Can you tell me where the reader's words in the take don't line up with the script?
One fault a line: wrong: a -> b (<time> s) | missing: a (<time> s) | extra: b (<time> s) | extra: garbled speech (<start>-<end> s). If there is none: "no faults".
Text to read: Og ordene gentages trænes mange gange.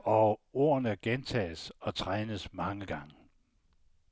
extra: og (1.8 s)